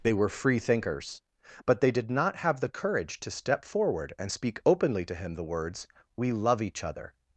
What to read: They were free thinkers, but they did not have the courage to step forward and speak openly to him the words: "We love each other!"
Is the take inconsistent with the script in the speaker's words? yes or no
no